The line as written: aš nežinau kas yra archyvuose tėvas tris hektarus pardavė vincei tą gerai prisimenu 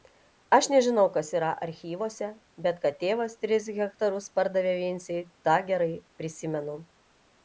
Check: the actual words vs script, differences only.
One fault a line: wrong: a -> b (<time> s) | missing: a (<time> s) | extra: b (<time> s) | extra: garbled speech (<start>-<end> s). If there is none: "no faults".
extra: bet kad (2.7 s)